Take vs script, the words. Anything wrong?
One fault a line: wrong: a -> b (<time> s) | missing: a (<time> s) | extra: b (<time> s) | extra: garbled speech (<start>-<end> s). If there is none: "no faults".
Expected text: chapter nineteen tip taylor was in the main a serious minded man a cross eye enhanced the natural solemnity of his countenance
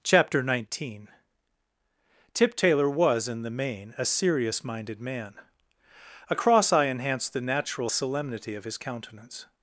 no faults